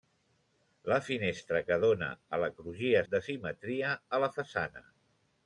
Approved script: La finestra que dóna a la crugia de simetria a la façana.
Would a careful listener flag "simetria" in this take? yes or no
no